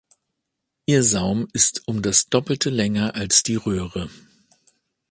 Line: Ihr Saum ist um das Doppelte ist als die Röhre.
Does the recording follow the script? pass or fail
fail